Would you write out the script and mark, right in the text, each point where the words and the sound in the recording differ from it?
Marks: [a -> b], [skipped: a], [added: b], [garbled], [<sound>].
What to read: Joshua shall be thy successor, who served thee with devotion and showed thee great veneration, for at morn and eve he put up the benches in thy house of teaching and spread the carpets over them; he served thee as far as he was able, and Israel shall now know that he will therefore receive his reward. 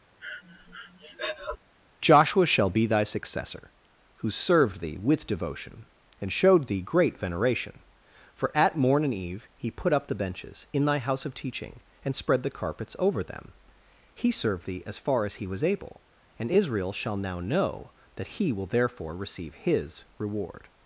[breath] Joshua shall be thy successor, who served thee with devotion and showed thee great veneration, for at morn and eve he put up the benches in thy house of teaching and spread the carpets over them; he served thee as far as he was able, and Israel shall now know that he will therefore receive his reward.